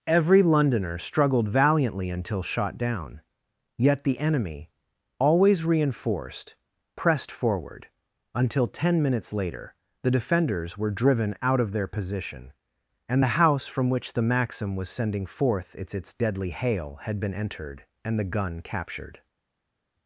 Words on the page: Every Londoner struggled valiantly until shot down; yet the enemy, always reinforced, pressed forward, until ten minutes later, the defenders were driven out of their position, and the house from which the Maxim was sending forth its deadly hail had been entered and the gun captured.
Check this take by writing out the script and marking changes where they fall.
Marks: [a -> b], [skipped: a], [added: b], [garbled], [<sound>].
Every Londoner struggled valiantly until shot down; yet the enemy, always reinforced, pressed forward, until ten minutes later, the defenders were driven out of their position, and the house from which the Maxim was sending forth its [added: its] deadly hail had been entered and the gun captured.